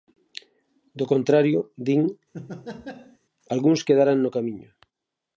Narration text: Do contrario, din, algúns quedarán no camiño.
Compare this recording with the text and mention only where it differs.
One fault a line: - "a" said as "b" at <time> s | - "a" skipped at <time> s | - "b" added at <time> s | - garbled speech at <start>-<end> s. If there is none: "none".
none